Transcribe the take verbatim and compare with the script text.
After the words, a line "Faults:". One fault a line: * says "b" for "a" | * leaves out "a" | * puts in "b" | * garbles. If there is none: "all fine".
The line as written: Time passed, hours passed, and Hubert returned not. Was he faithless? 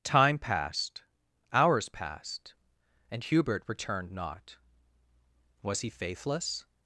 Time passed, hours passed, and Hubert returned not. Was he faithless?
Faults:
all fine